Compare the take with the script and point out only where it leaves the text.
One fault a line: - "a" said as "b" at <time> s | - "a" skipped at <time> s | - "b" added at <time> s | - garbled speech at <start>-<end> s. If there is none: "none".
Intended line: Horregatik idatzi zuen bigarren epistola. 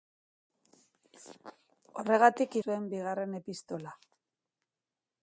- "idatzi" skipped at 2.6 s